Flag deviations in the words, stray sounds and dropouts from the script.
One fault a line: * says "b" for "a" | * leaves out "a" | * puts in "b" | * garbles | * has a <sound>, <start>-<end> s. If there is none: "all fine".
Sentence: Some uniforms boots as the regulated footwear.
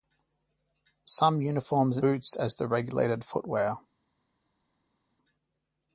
all fine